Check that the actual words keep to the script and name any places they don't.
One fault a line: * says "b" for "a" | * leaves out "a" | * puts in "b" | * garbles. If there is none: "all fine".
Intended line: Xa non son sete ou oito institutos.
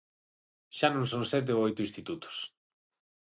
all fine